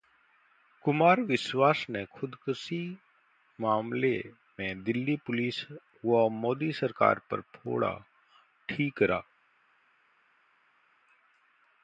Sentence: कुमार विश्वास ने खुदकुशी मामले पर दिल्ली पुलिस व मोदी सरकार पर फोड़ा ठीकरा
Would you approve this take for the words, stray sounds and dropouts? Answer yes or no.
no